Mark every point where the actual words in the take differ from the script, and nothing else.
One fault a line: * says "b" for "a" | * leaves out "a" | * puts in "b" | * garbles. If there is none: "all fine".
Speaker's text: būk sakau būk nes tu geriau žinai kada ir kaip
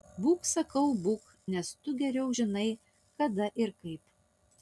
all fine